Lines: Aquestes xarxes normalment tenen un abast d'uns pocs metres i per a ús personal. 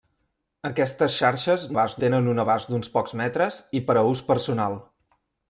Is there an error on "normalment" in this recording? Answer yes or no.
yes